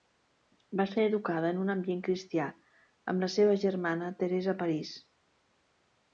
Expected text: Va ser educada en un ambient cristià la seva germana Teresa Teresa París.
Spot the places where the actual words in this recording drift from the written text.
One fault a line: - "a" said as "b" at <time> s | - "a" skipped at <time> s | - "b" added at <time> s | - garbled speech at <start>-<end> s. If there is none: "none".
- "amb" added at 3.1 s
- "Teresa" skipped at 4.6 s